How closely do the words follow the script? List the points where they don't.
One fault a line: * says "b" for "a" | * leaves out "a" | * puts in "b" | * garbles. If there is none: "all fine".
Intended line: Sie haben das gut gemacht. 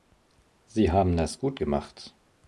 all fine